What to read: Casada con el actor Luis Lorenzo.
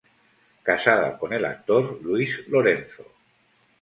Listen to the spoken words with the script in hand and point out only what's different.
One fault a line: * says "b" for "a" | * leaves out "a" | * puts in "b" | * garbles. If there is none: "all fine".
all fine